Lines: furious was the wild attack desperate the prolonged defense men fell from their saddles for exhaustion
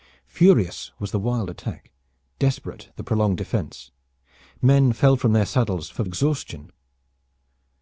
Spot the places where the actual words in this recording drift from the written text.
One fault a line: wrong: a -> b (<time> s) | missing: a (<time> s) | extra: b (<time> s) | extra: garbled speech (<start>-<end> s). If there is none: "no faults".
no faults